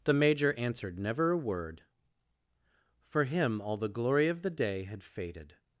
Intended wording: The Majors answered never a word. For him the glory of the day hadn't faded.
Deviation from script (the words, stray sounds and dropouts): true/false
true